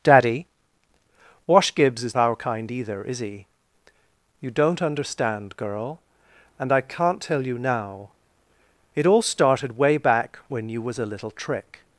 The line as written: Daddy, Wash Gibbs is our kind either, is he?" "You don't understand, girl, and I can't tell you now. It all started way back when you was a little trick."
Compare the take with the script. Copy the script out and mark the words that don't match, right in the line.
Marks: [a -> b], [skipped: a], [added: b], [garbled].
Daddy, Wash Gibbs is our kind either, is he?" "You don't understand, girl, and I can't tell you now. It all started way back when you was a little trick."